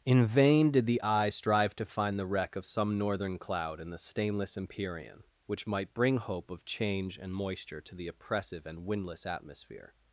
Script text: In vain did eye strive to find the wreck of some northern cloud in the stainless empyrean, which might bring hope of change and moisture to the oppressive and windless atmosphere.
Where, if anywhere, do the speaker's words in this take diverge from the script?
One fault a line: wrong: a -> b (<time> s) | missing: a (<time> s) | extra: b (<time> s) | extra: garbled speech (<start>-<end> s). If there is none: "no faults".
extra: the (0.9 s)